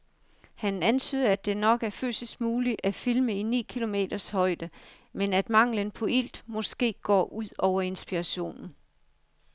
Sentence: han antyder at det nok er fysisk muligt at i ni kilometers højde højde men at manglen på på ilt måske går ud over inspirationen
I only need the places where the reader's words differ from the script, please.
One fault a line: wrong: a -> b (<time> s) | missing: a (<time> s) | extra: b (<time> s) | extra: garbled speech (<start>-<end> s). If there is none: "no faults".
extra: filme (2.9 s)
missing: højde (4.7 s)
missing: på (6.1 s)